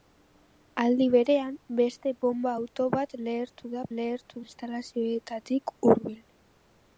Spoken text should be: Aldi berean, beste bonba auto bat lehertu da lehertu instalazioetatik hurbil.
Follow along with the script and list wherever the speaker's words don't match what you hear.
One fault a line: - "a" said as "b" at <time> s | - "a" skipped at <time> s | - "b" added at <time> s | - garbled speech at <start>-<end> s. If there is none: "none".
none